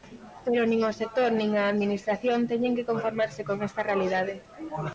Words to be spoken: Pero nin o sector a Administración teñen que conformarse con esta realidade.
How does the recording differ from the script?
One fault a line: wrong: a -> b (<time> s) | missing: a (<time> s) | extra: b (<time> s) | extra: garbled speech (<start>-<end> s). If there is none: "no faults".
extra: nin (1.4 s)